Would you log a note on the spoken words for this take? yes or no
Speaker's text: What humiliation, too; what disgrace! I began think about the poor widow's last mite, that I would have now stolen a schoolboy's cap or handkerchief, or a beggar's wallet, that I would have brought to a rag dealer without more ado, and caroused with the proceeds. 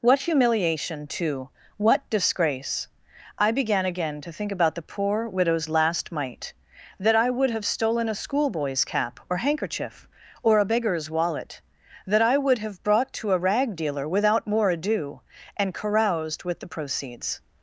yes